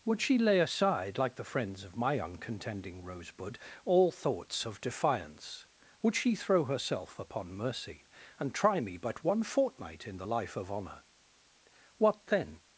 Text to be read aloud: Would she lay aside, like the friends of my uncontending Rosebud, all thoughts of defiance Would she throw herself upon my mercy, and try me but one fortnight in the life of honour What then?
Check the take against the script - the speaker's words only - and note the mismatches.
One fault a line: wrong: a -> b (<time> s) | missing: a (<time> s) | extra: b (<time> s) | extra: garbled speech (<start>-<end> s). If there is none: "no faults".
missing: my (7.5 s)